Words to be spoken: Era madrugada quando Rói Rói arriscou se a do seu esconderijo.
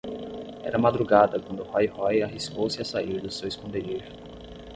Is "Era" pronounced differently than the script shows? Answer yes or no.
no